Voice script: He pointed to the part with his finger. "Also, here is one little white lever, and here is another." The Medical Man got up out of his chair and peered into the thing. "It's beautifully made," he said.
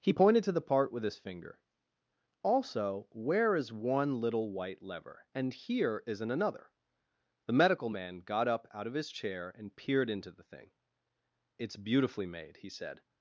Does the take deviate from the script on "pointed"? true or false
false